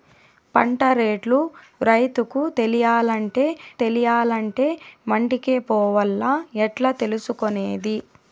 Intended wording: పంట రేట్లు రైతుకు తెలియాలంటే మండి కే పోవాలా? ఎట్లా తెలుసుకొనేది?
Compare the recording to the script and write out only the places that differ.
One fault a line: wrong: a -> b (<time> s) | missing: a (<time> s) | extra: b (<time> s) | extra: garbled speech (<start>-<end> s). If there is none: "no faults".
extra: తెలియాలంటే (3.8 s)